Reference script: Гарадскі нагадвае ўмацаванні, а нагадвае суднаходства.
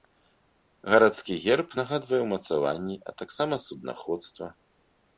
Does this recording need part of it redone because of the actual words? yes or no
yes